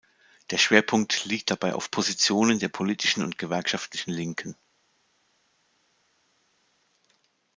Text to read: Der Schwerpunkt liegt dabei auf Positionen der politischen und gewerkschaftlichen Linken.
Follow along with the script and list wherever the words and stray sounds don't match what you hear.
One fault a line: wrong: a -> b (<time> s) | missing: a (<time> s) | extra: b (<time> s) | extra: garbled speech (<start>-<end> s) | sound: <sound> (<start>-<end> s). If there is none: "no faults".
no faults